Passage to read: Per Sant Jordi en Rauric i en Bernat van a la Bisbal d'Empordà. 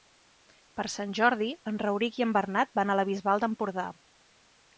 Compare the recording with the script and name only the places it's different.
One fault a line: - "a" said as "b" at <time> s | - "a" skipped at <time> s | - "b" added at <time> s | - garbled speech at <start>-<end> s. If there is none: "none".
none